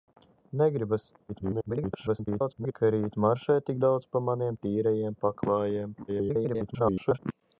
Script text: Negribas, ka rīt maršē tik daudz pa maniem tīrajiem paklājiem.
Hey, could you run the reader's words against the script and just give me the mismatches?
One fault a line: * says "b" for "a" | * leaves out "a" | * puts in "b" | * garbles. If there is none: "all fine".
* garbles
* garbles